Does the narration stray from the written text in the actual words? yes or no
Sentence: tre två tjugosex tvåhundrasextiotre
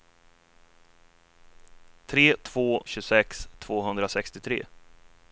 no